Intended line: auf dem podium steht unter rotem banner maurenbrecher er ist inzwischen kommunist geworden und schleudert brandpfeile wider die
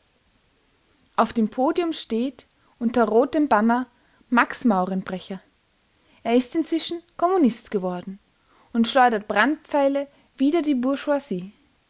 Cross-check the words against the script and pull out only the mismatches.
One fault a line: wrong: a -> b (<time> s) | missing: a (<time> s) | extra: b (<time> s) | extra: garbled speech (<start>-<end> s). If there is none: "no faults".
extra: max (4.3 s)